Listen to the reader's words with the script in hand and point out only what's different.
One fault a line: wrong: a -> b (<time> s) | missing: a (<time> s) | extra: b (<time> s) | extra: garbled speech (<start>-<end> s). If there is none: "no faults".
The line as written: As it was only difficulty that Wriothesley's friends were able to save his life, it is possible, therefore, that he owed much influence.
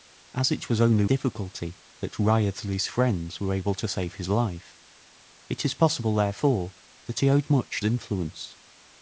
no faults